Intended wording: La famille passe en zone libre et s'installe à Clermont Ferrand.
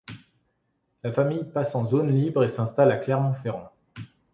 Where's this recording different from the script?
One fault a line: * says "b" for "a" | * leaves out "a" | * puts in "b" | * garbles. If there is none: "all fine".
all fine